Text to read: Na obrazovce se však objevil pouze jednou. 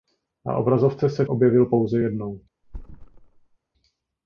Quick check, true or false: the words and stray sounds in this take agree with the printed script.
false